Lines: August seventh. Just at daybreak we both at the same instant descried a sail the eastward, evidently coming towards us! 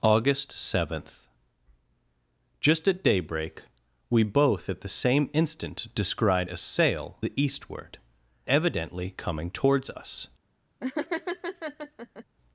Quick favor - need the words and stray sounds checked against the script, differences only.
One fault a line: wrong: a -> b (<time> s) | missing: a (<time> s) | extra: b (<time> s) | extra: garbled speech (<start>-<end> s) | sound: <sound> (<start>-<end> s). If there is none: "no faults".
sound: laugh (10.8-12.2 s)